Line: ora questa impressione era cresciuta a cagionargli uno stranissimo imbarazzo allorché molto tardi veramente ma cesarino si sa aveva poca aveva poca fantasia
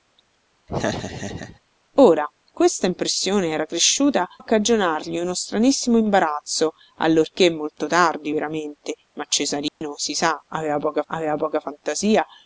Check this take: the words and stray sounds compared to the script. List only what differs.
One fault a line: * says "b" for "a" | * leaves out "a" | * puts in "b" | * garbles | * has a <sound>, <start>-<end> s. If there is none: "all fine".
* has a laugh, 0.7-1.6 s
* has a dropout, 9.7-9.8 s